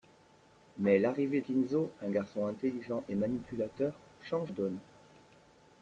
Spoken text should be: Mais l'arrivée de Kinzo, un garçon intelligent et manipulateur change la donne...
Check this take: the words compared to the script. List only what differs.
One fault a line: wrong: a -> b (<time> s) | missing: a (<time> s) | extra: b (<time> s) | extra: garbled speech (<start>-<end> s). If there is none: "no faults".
missing: de (1.4 s)
missing: la (4.5 s)